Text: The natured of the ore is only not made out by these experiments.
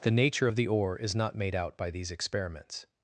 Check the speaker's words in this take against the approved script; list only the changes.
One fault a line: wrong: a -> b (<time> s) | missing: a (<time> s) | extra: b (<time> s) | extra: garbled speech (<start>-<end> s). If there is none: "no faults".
wrong: natured -> nature (0.1 s)
missing: only (1.1 s)